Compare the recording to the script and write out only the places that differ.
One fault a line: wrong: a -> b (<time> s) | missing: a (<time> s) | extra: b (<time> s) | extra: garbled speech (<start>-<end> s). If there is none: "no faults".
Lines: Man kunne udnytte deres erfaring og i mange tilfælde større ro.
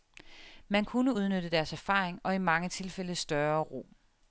no faults